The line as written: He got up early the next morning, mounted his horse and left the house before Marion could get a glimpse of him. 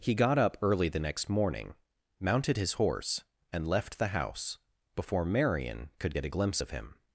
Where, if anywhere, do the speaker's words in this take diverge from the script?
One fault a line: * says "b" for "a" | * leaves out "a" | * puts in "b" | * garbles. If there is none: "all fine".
all fine